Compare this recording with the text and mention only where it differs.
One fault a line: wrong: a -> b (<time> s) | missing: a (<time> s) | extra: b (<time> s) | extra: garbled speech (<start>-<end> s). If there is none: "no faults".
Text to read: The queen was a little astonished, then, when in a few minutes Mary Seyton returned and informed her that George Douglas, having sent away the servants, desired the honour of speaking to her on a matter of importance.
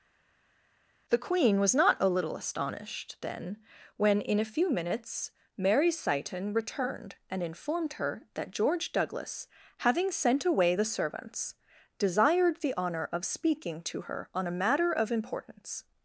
extra: not (1.7 s)